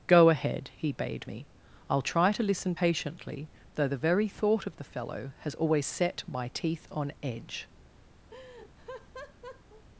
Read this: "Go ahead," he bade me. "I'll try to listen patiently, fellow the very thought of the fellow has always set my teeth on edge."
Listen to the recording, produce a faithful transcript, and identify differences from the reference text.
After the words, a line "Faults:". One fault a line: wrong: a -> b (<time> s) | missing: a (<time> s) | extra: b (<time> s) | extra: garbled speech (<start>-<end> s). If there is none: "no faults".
"Go ahead," he bade me. "I'll try to listen patiently, though the very thought of the fellow has always set my teeth on edge."
Faults:
wrong: fellow -> though (3.7 s)